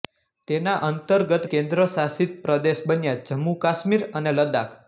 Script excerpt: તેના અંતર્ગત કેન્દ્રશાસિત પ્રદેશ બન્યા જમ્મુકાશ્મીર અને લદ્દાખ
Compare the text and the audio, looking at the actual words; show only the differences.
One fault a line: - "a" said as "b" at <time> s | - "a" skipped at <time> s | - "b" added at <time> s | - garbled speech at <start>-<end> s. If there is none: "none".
none